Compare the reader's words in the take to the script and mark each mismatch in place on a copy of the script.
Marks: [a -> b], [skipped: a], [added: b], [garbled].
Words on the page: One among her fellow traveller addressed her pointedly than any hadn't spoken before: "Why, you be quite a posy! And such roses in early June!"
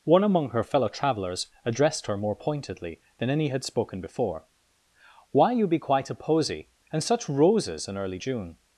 One among her fellow [traveller -> travellers] addressed her [added: more] pointedly than any [hadn't -> had] spoken before: "Why, you be quite a posy! And such roses in early June!"